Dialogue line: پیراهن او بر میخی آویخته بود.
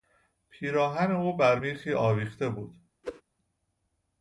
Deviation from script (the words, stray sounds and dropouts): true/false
true